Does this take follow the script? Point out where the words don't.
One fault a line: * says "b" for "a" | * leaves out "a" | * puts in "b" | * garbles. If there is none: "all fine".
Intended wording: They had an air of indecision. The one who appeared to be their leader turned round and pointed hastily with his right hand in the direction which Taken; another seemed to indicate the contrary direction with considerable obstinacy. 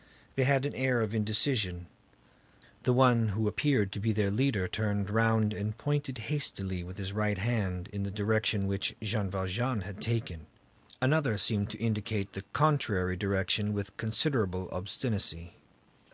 * puts in "Jean Valjean had"